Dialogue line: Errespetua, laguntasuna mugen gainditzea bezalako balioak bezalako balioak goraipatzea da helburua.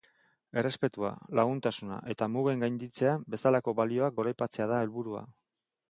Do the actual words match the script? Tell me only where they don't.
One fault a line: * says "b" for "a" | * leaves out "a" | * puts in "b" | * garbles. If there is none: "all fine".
* puts in "eta"
* leaves out "bezalako balioak"